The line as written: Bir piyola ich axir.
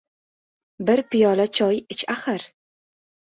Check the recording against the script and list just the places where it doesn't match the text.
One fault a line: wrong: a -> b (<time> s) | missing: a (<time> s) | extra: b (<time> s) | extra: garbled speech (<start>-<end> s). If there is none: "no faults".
extra: choy (1.6 s)